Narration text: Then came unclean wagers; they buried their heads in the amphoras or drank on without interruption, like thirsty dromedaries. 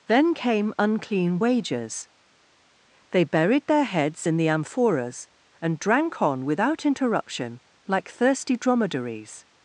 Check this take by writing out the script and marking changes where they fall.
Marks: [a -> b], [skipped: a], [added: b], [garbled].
Then came unclean wagers; they buried their heads in the amphoras [or -> and] drank on without interruption, like thirsty dromedaries.